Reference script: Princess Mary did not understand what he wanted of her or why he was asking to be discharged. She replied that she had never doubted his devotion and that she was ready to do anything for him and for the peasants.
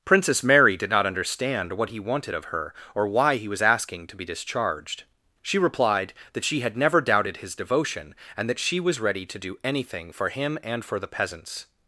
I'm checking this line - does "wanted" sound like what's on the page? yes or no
yes